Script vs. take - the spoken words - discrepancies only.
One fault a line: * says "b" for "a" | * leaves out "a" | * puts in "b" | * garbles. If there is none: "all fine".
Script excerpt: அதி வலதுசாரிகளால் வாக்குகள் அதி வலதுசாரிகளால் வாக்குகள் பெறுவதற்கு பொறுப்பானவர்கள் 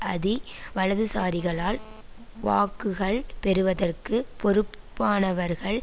* leaves out "அதி வலதுசாரிகளால் வாக்குகள்"